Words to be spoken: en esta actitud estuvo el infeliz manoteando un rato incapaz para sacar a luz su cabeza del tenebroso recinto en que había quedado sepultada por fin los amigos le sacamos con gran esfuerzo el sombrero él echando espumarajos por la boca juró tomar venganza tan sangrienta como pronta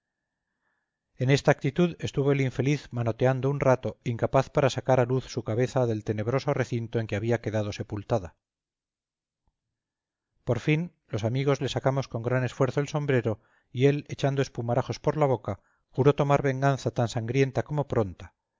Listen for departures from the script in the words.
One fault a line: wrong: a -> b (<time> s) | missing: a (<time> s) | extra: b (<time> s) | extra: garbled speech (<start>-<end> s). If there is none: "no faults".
extra: y (13.7 s)